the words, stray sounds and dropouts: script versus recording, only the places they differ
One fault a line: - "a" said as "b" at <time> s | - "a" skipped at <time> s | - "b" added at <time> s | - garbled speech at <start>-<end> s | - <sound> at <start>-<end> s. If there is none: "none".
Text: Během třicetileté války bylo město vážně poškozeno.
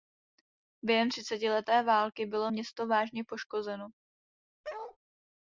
- bark at 4.6-5.0 s